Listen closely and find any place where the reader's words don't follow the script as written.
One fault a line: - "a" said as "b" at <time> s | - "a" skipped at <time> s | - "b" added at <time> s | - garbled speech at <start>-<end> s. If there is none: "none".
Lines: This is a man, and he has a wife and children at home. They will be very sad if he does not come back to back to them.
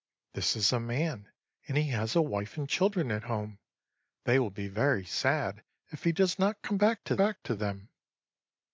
none